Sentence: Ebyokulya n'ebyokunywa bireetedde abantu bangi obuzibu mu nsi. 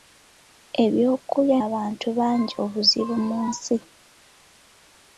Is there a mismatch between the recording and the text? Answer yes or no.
yes